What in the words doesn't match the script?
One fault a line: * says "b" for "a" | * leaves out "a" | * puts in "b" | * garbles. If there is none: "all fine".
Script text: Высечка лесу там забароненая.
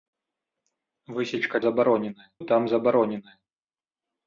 * says "забароненая" for "лесу"